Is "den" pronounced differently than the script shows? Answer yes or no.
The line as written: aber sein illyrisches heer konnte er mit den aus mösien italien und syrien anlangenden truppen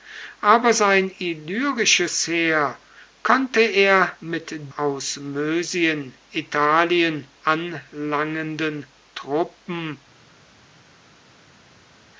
yes